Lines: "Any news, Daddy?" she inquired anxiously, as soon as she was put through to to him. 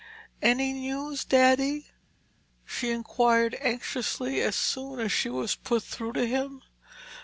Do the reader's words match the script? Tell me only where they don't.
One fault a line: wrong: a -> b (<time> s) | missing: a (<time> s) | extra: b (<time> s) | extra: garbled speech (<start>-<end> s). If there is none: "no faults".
missing: to (6.3 s)